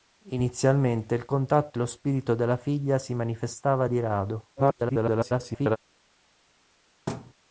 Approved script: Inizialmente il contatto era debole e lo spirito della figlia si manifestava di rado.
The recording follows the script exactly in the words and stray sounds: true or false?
false